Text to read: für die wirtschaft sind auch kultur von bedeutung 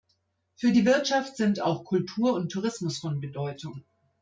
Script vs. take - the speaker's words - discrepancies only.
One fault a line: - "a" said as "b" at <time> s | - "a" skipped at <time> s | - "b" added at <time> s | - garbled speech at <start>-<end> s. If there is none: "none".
- "und tourismus" added at 2.3 s